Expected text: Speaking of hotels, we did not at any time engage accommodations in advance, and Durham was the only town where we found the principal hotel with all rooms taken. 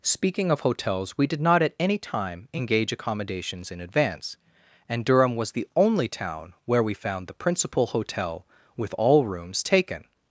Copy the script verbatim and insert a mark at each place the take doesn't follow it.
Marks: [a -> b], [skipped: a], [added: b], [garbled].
Speaking of hotels, we did not at any time engage accommodations in advance, and Durham was the only town where we found the principal hotel with all rooms taken.